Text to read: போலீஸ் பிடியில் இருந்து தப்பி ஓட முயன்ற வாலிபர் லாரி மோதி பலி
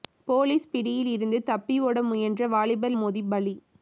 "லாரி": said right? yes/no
no